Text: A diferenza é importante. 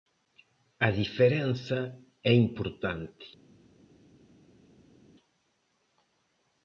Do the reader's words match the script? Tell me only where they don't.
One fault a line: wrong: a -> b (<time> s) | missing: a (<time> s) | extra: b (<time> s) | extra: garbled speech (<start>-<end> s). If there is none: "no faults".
no faults